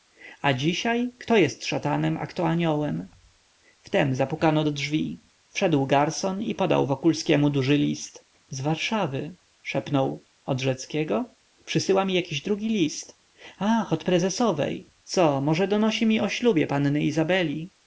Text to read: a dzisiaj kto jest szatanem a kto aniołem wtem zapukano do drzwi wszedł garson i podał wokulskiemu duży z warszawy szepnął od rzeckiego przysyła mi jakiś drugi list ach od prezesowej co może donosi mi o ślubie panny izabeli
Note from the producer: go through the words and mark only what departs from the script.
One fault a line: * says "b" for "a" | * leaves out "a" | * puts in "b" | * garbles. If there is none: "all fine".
* puts in "list"